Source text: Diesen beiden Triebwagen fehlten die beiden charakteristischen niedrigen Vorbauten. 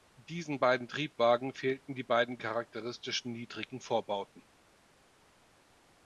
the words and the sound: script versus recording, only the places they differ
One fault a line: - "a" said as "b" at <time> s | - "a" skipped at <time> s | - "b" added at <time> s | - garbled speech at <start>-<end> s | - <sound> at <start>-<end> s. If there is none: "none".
none